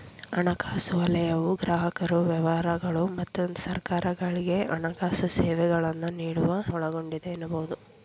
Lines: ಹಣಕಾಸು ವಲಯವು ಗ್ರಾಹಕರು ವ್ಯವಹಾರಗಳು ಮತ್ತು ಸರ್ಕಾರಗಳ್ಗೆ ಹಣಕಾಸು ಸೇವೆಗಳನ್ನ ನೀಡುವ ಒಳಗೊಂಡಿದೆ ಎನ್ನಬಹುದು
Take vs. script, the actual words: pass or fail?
pass